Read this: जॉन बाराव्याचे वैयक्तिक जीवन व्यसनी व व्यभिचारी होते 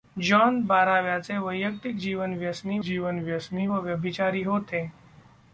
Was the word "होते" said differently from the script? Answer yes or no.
no